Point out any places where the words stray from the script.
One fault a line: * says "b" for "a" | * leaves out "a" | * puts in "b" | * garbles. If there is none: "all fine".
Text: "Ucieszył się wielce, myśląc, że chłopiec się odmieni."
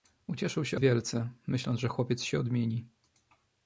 all fine